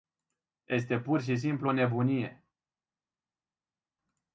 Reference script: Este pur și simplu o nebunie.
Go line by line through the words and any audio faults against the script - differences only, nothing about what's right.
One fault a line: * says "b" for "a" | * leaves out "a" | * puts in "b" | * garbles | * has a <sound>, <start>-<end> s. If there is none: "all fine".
all fine